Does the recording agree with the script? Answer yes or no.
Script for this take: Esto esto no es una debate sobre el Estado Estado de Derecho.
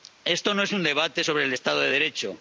no